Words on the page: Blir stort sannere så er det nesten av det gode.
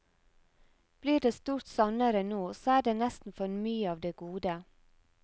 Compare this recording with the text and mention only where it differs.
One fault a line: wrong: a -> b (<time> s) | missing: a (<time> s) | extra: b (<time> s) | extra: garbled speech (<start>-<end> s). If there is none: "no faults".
extra: det (1.2 s)
extra: nå (2.2 s)
extra: for mye (3.4 s)